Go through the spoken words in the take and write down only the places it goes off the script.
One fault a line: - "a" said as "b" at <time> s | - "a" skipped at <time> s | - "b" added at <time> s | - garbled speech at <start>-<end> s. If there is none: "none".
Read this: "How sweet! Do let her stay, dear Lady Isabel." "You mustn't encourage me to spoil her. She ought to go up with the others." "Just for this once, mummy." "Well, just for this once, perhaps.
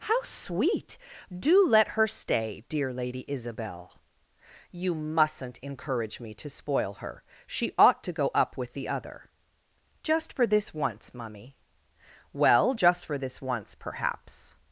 - "others" said as "other" at 8.9 s